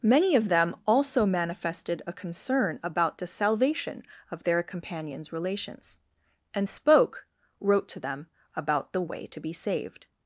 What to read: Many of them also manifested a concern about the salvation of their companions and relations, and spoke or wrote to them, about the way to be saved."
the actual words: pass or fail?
fail